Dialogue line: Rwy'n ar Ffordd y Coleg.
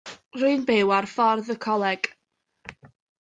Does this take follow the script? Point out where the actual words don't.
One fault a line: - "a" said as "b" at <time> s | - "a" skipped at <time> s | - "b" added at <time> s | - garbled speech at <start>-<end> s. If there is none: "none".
- "byw" added at 0.7 s